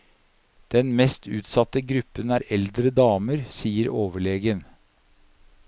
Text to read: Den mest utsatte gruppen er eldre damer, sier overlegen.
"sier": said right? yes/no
yes